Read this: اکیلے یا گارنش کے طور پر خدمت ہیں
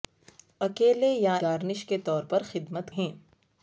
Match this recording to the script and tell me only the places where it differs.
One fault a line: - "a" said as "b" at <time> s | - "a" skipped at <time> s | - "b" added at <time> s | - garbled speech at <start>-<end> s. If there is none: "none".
none